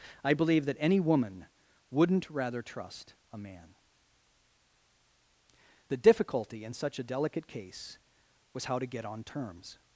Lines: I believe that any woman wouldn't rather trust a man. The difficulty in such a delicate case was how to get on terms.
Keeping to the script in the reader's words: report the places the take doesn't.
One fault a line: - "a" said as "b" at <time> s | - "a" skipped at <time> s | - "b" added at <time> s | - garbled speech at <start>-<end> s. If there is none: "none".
none